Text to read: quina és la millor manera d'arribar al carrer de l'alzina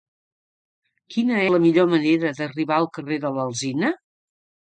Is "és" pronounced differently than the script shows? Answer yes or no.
yes